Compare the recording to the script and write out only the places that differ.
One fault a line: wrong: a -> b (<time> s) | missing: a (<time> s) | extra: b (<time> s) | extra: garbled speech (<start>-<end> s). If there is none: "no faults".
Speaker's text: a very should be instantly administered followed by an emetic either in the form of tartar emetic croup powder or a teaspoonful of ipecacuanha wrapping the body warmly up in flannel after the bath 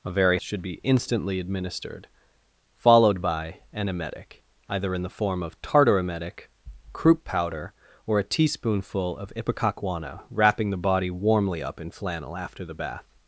no faults